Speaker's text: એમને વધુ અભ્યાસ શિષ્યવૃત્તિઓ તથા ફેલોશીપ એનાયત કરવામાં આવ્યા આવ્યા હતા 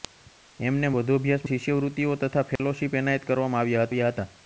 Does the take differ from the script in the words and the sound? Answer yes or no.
yes